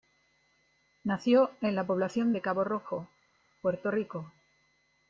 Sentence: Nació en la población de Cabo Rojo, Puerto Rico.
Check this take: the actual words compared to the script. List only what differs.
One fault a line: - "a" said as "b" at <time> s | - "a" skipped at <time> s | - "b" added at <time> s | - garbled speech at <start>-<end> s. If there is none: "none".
none